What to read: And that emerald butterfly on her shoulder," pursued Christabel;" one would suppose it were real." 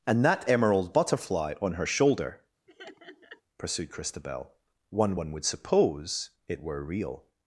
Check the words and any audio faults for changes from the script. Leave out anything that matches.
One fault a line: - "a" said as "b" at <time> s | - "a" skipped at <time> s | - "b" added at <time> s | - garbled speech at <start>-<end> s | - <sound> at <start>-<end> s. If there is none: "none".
- laugh at 2.7-3.4 s
- "one" added at 5.1 s